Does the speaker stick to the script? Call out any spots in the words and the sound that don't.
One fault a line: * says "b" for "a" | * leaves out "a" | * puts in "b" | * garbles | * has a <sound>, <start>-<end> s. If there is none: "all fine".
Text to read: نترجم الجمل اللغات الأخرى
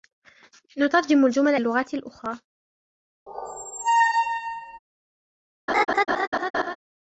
* has a squeak, 3.3-4.8 s
* has a laugh, 5.7-6.8 s